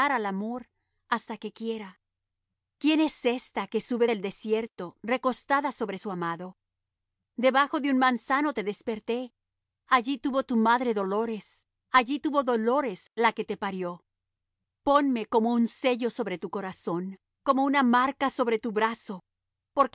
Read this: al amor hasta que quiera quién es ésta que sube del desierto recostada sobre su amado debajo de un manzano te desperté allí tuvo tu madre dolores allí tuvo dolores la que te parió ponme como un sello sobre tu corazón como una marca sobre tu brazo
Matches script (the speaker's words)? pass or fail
pass